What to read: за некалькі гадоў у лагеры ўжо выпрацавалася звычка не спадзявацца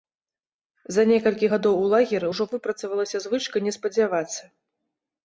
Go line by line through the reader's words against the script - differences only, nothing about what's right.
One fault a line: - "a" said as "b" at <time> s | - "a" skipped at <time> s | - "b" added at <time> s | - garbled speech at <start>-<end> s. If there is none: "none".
none